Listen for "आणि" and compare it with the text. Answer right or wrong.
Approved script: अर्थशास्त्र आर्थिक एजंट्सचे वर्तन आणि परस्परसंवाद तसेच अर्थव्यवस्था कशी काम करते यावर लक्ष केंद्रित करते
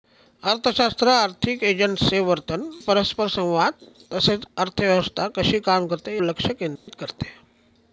wrong